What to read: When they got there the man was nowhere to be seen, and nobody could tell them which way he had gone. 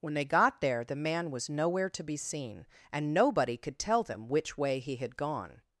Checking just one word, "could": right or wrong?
right